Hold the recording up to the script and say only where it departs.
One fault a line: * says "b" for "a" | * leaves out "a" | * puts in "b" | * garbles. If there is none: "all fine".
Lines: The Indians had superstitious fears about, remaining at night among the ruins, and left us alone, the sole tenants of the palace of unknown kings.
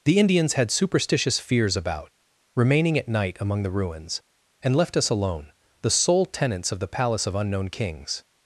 all fine